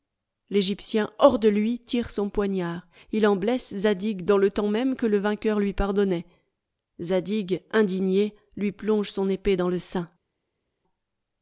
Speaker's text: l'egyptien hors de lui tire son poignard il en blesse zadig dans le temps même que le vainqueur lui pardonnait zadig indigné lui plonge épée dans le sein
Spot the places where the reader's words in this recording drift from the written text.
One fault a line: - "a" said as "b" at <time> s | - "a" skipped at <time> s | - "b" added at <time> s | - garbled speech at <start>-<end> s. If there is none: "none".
- "son" added at 9.1 s